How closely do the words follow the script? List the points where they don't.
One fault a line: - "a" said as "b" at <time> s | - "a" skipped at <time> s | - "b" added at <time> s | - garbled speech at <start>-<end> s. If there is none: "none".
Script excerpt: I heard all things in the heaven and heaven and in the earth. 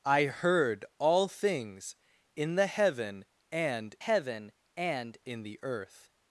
none